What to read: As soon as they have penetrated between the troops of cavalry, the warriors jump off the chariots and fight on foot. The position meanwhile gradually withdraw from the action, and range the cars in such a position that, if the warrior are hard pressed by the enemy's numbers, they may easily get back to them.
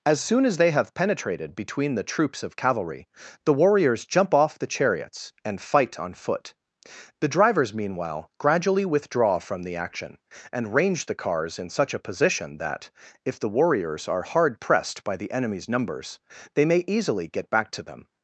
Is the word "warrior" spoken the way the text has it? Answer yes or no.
no